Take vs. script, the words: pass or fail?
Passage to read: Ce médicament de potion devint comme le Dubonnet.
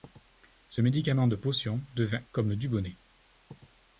pass